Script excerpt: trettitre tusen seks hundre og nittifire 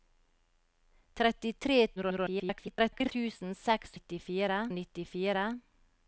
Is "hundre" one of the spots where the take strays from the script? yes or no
yes